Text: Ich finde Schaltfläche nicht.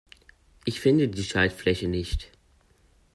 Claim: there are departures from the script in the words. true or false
true